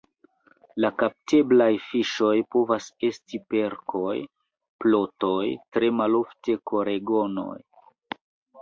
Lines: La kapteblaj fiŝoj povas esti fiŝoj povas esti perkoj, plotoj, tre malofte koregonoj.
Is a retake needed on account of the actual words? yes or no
yes